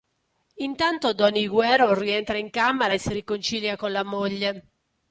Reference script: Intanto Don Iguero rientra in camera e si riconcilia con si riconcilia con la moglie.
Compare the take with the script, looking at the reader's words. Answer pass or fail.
fail